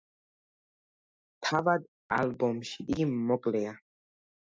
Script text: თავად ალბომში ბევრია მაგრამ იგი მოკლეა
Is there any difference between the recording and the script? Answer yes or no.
yes